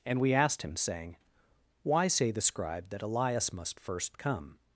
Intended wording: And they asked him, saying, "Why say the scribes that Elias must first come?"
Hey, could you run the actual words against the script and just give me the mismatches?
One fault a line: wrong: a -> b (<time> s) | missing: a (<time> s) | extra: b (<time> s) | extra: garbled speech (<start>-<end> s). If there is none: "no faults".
wrong: they -> we (0.2 s)
wrong: scribes -> scribe (2.4 s)